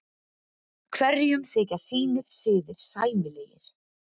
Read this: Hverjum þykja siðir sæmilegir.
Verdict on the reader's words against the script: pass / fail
fail